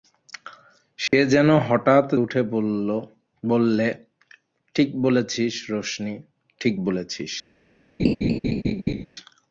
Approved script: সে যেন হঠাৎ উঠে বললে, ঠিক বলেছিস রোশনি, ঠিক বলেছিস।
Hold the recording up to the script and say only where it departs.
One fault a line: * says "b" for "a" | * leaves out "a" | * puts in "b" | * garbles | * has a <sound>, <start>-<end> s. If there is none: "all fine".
* has a dropout, 1.1-1.1 s
* has a laugh, 8.0-9.1 s